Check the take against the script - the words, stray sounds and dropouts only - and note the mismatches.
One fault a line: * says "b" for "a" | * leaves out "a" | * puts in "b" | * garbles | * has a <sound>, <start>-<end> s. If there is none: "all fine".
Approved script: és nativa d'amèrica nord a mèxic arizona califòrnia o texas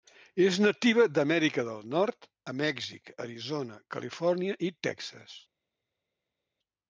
* puts in "del"
* says "i" for "o"